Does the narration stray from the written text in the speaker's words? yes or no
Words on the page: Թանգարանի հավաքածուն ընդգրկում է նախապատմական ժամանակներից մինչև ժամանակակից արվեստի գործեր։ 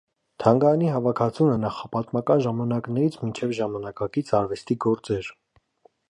yes